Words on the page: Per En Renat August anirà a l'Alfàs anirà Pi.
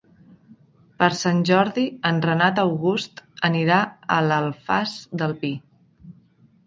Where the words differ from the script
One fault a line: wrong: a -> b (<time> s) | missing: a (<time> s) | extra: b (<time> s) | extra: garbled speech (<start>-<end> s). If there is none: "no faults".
extra: Sant Jordi (1.2 s)
wrong: anirà -> del (5.2 s)